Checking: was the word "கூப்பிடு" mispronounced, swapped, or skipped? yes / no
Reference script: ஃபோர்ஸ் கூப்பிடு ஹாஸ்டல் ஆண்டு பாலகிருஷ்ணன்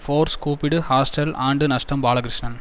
no